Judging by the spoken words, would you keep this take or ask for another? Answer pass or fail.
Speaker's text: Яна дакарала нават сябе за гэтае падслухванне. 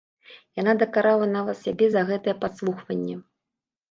pass